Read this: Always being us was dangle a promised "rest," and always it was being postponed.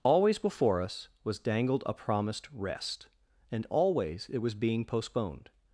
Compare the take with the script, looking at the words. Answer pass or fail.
fail